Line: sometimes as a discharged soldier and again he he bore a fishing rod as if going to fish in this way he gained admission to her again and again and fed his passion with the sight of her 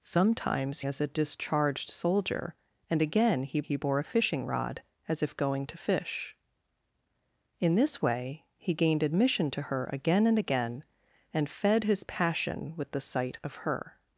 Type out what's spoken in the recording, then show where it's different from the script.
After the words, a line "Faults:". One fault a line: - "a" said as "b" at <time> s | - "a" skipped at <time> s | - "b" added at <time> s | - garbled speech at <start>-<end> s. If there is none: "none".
sometimes as a discharged soldier and again he he bore a fishing rod as if going to fish in this way he gained admission to her again and again and fed his passion with the sight of her
Faults:
none